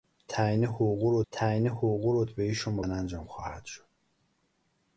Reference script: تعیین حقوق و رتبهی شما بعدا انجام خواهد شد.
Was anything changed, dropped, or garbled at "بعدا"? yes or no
yes